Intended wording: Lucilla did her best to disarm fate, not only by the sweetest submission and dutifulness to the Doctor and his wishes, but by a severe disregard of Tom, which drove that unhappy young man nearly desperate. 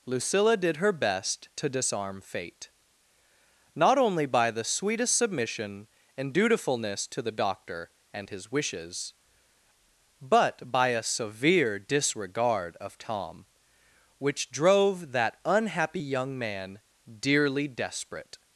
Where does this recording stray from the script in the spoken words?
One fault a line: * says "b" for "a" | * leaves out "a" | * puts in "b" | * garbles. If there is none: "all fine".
* says "dearly" for "nearly"